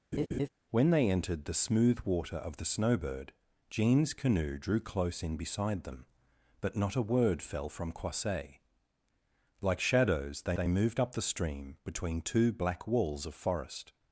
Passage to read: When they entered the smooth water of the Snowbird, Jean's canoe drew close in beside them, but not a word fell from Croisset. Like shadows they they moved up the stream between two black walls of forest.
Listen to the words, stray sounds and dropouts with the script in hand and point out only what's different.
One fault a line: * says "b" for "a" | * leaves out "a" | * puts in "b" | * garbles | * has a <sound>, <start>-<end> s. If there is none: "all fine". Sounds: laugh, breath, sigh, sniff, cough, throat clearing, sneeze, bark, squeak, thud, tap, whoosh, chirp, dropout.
* has a laugh, 0.1-0.5 s